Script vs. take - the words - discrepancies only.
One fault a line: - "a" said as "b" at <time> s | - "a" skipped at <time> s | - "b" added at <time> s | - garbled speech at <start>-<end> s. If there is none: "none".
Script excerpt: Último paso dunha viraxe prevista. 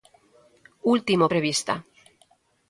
- "paso dunha viraxe" skipped at 1.3 s